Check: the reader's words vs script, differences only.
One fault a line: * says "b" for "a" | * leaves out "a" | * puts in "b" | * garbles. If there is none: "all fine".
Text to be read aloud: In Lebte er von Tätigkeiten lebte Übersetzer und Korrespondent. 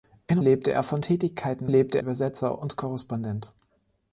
all fine